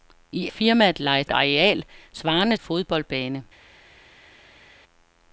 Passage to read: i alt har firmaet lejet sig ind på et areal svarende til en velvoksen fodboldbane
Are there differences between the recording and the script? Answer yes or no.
yes